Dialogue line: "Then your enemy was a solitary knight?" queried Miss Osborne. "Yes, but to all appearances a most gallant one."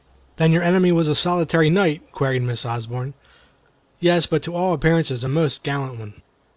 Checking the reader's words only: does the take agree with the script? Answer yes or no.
yes